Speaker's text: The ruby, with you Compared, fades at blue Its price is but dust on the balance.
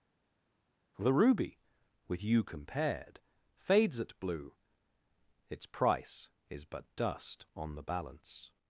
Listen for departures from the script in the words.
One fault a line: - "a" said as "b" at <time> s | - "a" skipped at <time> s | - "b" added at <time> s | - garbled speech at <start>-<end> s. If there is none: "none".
none